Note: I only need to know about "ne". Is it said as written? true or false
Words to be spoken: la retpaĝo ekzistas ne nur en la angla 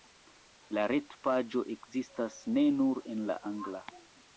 true